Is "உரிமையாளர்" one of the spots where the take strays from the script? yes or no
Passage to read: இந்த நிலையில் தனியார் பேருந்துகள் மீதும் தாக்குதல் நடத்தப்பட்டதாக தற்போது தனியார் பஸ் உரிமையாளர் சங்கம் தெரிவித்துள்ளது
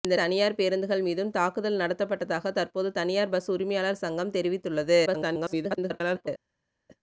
no